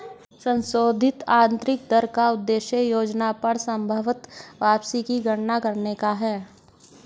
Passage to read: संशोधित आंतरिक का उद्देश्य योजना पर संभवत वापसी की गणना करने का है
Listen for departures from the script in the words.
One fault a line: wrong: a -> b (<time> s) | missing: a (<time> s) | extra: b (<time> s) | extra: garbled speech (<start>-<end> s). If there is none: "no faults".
extra: दर (1.9 s)